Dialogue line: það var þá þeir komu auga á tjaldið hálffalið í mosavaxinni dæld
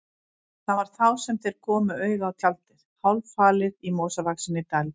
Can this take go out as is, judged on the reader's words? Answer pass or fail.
fail